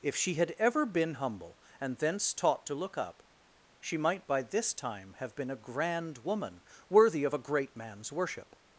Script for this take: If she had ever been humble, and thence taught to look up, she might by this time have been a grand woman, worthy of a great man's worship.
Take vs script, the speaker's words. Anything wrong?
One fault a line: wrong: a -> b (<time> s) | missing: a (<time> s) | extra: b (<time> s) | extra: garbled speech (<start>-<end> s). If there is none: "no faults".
no faults